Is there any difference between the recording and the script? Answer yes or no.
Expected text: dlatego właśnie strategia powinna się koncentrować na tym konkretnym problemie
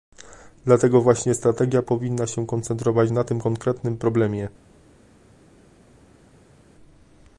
no